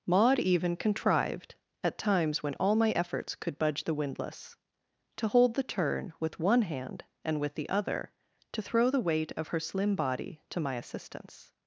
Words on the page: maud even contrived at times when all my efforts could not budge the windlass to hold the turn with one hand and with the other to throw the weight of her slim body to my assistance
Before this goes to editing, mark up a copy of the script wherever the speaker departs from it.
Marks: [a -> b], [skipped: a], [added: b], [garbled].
maud even contrived at times when all my efforts could [skipped: not] budge the windlass to hold the turn with one hand and with the other to throw the weight of her slim body to my assistance